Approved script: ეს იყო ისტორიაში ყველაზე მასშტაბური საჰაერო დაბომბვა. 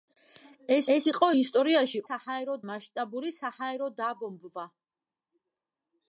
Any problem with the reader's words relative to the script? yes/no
yes